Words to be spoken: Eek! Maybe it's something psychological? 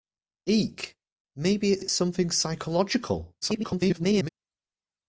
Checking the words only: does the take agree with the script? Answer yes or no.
no